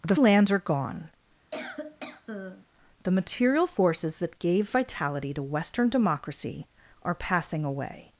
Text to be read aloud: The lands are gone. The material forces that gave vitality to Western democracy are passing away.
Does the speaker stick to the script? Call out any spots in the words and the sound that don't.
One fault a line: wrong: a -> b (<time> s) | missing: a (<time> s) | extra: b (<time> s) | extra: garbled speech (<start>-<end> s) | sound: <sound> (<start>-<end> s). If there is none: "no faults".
sound: cough (1.5-2.7 s)